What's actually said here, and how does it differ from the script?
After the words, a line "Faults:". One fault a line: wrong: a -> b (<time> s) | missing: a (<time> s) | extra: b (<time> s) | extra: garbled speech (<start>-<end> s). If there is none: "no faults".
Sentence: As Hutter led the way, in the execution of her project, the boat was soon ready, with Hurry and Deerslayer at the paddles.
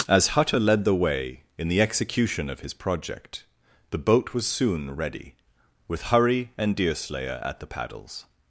As Hutter led the way, in the execution of his project, the boat was soon ready, with Hurry and Deerslayer at the paddles.
Faults:
wrong: her -> his (2.6 s)